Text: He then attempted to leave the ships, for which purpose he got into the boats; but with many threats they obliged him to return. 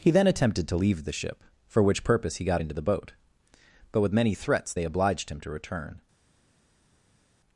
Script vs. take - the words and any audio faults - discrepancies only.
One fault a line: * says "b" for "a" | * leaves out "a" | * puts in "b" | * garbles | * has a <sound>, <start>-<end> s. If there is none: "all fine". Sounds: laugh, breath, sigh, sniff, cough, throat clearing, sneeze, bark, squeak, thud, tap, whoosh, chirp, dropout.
* says "ship" for "ships"
* says "boat" for "boats"